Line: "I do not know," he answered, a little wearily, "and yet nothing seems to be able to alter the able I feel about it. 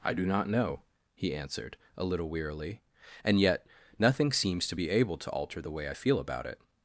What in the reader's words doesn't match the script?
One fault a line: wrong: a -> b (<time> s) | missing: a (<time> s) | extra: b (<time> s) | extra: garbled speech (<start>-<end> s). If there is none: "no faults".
wrong: able -> way (5.7 s)